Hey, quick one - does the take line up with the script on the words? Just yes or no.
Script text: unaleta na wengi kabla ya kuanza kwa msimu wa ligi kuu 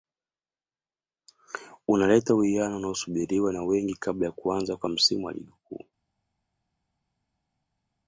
no